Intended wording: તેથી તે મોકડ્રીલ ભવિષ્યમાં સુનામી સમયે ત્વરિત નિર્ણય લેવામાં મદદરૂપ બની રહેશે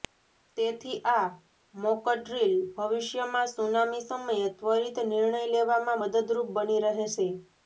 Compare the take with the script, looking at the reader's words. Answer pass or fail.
fail